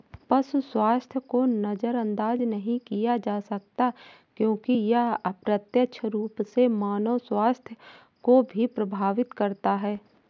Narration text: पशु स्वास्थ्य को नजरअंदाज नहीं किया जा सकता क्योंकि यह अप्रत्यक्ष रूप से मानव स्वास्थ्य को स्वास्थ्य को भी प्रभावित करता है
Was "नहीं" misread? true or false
false